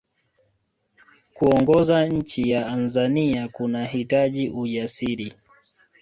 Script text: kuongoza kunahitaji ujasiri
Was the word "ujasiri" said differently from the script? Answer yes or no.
no